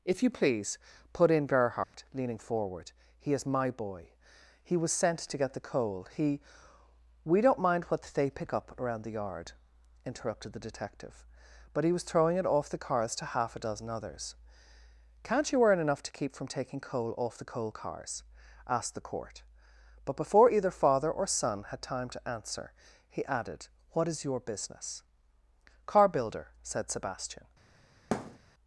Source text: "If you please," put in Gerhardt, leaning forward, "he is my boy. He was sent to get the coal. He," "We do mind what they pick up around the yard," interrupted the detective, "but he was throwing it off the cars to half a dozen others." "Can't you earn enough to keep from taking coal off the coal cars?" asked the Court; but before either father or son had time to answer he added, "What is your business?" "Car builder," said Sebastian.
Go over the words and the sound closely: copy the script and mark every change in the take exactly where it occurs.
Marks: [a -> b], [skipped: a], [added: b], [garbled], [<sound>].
"If you please," put in Gerhardt, [dropout] leaning forward, "he is my boy. He was sent to get the coal. He," "We [do -> don't] mind what they pick up around the yard," interrupted the detective, "but he was throwing it off the cars to half a dozen others." "Can't you earn enough to keep from taking coal off the coal cars?" asked the Court; but before either father or son had time to answer he added, "What is your business?" "Car builder," said Sebastian. [thud]